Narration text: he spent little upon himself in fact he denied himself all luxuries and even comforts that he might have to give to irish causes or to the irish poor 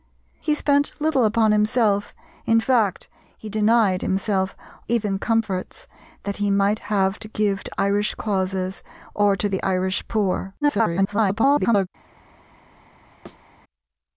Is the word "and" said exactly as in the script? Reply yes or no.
no